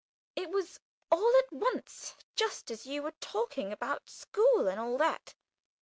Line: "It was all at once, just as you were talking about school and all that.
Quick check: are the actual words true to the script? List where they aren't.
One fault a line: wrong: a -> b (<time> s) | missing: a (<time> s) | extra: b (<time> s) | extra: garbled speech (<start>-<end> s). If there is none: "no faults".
no faults